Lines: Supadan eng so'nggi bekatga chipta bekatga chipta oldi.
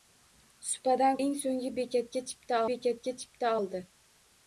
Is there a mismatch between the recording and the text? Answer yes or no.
no